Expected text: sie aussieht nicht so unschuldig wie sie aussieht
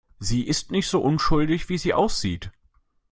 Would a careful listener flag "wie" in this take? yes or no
no